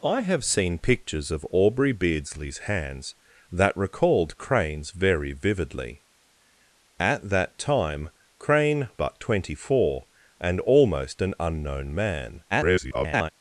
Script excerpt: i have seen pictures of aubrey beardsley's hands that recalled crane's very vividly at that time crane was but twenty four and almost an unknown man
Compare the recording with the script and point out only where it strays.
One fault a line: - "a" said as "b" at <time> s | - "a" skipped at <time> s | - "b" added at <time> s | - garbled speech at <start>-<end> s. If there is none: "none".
- "was" skipped at 8.9 s
- garbled speech at 12.5-13.3 s